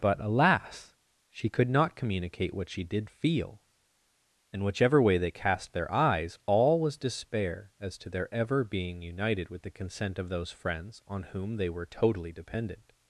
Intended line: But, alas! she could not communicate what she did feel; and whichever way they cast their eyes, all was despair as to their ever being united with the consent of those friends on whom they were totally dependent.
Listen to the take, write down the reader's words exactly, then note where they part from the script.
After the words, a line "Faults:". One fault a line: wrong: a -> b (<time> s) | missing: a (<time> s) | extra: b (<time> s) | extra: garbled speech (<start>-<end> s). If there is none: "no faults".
But, alas! she could not communicate what she did feel; and whichever way they cast their eyes, all was despair as to their ever being united with the consent of those friends on whom they were totally dependent.
Faults:
no faults